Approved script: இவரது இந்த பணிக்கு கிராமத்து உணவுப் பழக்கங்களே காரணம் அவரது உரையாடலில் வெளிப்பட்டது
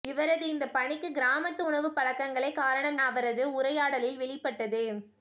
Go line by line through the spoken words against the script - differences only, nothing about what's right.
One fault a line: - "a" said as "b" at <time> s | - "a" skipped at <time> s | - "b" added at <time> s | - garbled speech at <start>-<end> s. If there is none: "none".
none